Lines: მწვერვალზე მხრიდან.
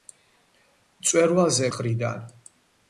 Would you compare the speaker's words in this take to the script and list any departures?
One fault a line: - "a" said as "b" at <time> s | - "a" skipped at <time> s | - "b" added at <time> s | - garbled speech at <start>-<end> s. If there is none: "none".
none